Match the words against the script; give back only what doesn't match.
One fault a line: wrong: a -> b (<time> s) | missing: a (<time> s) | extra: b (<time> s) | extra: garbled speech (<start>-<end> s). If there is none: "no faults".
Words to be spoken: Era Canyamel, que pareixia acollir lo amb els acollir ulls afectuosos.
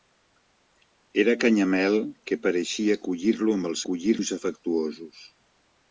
no faults